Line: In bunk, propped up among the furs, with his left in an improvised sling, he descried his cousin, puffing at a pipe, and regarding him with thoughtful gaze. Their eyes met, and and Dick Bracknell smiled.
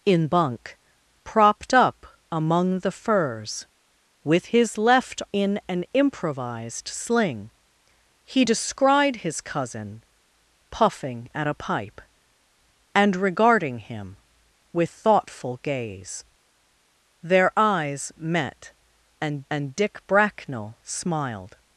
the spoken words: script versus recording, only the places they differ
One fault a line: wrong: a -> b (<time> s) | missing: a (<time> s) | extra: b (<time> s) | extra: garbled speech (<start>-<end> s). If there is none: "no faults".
no faults